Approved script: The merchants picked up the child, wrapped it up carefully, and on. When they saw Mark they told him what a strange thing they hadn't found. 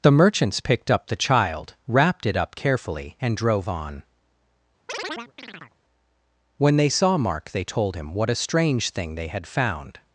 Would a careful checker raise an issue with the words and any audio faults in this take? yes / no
yes